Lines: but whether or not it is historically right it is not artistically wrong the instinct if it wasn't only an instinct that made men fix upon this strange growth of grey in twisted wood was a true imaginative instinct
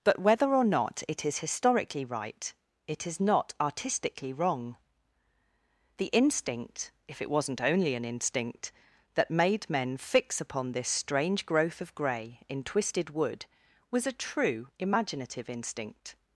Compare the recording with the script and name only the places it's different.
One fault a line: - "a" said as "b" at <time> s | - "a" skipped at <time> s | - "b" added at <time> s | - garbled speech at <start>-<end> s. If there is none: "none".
none